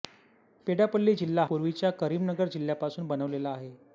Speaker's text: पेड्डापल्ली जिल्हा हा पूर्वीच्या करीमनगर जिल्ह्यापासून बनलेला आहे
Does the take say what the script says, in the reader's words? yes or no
no